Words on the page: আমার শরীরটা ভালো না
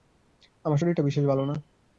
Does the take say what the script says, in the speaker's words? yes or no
no